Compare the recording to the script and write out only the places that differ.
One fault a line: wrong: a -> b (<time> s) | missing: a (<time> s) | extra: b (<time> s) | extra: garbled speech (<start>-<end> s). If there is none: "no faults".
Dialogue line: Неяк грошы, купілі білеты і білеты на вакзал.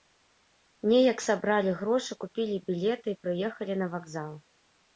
extra: сабралі (1.2 s)
wrong: білеты -> прыехалі (3.3 s)